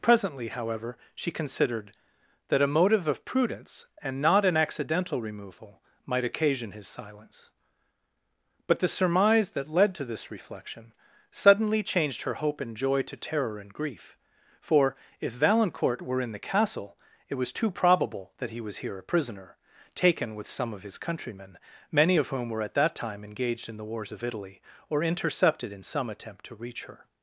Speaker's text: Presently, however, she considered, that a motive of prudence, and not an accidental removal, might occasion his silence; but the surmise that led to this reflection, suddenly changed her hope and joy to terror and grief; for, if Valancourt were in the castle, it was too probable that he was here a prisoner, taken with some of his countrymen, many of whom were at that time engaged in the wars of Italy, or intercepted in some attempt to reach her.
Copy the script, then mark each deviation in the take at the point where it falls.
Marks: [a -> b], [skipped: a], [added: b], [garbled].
Presently, however, she considered, that a motive of prudence, and not an accidental removal, might occasion his silence; but the surmise that led to this reflection, suddenly changed her hope and joy to terror and grief; for, if Valancourt were in the castle, it was too probable that he was here a prisoner, taken with some of his countrymen, many of whom were at that time engaged in the wars of Italy, or intercepted in some attempt to reach her.